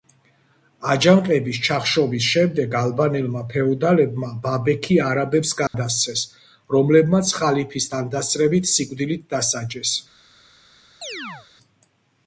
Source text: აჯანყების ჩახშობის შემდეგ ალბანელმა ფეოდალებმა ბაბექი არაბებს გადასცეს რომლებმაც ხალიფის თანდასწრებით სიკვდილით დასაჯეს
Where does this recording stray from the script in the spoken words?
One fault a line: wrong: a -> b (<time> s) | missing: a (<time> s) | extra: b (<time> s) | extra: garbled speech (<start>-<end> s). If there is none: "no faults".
no faults